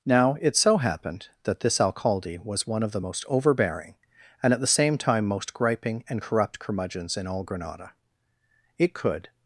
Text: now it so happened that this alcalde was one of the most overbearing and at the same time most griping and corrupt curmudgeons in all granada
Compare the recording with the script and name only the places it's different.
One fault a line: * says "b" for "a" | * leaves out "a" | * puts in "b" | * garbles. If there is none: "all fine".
* puts in "it could"